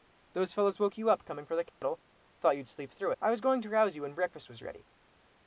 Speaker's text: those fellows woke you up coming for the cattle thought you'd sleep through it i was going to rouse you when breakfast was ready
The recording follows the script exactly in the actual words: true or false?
false